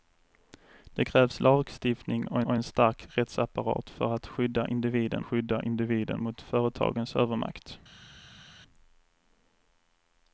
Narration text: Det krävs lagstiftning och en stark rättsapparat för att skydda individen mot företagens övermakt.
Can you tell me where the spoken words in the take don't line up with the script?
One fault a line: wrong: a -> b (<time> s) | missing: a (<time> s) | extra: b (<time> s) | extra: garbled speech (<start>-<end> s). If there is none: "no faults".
extra: och (2.4 s)
extra: skydda individen (5.2 s)